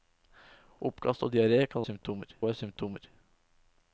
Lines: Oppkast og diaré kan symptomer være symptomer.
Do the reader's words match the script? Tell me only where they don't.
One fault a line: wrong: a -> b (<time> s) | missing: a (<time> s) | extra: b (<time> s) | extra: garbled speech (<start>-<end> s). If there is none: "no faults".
no faults